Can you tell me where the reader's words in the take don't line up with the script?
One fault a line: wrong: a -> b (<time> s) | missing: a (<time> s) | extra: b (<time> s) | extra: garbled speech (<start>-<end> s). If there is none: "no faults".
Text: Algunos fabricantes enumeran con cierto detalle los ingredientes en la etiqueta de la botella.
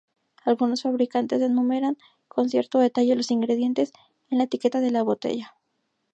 no faults